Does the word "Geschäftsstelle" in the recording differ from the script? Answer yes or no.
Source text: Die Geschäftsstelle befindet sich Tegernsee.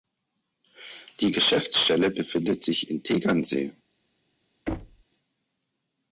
no